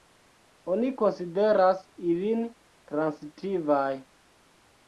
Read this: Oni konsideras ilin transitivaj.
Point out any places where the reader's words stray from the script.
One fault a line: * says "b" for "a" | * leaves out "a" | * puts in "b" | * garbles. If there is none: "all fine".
all fine